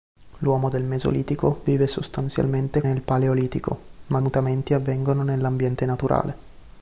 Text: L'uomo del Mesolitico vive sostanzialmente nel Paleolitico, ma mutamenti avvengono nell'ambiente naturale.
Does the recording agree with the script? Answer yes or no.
yes